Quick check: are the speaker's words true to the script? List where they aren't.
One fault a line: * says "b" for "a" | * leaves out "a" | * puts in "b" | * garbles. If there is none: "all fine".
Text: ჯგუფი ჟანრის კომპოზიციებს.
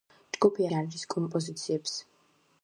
all fine